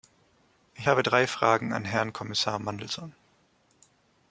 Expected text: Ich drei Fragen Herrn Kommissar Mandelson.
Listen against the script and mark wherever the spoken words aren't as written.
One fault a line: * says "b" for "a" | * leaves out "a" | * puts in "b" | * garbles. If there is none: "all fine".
* puts in "habe"
* puts in "an"